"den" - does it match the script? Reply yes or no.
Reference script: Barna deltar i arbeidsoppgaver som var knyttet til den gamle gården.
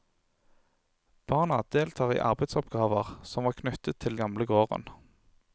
no